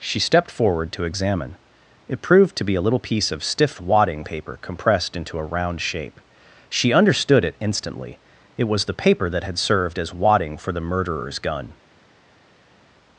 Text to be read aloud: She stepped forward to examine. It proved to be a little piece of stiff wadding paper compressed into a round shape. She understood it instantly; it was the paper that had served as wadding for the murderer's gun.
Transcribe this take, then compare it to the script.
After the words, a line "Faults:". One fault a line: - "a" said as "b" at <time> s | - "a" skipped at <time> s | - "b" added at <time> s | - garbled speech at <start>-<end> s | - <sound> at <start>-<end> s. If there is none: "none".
She stepped forward to examine. It proved to be a little piece of stiff wadding paper compressed into a round shape. She understood it instantly; it was the paper that had served as wadding for the murderer's gun.
Faults:
none